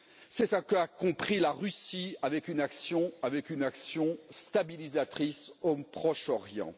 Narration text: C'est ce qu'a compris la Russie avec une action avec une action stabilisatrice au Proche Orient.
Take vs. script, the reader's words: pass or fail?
pass